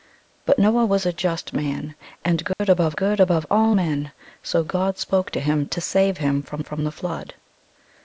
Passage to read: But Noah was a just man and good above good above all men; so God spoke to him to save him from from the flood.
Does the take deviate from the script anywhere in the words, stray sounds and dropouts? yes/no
yes